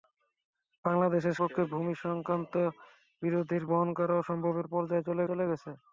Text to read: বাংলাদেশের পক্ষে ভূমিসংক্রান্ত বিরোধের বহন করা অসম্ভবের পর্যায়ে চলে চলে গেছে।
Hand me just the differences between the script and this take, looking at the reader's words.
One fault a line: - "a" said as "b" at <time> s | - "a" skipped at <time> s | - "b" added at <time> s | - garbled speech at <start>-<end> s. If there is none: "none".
none